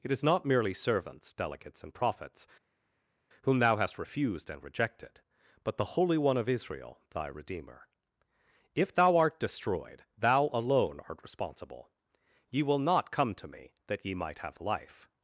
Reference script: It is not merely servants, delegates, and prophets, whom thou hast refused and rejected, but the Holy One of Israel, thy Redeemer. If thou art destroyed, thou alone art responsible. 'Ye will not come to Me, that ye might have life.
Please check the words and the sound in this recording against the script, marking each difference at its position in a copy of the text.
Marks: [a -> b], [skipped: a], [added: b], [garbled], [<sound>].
It is not merely servants, delegates, and prophets, whom thou hast refused and rejected, but the Holy One of Israel, thy Redeemer. If thou art destroyed, thou alone art responsible. 'Ye will not come to Me, that ye might have life.